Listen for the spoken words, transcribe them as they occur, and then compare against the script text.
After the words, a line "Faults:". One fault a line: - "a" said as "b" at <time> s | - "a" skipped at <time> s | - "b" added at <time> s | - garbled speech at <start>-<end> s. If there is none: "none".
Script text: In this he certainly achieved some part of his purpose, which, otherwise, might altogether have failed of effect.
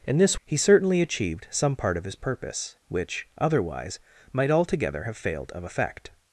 In this he certainly achieved some part of his purpose, which, otherwise, might altogether have failed of effect.
Faults:
none